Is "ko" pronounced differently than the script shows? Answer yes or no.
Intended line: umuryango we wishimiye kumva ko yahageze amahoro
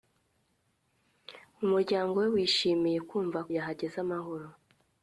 yes